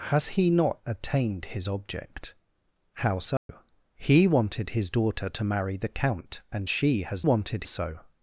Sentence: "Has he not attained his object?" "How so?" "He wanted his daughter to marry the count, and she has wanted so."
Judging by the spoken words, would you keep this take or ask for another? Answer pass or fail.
pass